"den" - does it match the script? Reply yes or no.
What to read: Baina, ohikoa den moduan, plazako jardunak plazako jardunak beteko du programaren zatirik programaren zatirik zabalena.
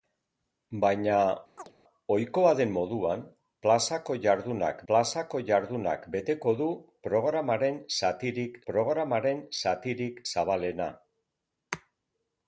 yes